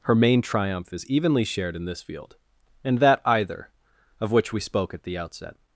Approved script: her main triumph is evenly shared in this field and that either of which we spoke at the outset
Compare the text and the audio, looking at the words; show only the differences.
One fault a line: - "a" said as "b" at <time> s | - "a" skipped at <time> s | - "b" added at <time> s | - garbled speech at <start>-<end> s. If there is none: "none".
none